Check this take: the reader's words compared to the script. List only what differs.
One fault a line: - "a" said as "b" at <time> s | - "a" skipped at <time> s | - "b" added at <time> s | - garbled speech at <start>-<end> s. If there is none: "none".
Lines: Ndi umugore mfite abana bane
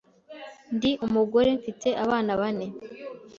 none